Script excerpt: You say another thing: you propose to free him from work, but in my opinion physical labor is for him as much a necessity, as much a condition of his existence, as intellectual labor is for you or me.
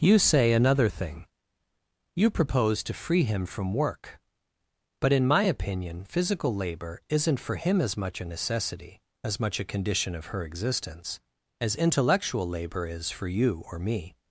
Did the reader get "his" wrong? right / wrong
wrong